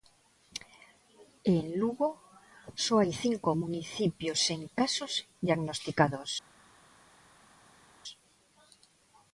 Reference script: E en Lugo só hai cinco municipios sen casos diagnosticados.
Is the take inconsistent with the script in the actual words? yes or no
no